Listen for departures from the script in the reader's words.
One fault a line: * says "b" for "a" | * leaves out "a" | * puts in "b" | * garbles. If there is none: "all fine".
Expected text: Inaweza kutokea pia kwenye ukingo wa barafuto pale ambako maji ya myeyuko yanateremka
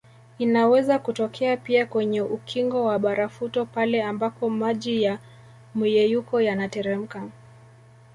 all fine